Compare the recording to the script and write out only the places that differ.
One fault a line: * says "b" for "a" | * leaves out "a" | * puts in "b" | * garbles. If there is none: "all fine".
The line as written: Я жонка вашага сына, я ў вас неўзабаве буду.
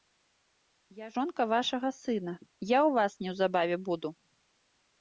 all fine